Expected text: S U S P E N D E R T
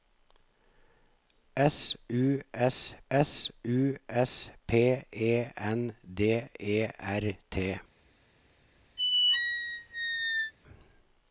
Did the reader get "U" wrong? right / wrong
right